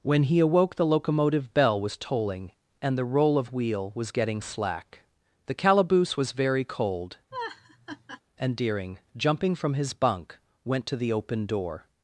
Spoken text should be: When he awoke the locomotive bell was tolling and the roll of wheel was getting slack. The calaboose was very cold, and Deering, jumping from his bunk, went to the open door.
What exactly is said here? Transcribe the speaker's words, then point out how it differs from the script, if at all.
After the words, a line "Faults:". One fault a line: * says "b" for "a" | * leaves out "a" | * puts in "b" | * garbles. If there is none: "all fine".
When he awoke the locomotive bell was tolling and the roll of wheel was getting slack. The calaboose was very cold, and Deering, jumping from his bunk, went to the open door.
Faults:
all fine